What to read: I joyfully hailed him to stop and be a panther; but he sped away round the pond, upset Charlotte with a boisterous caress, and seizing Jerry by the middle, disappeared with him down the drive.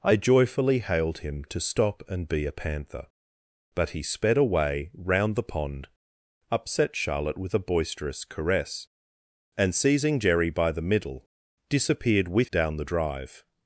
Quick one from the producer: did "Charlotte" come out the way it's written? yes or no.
yes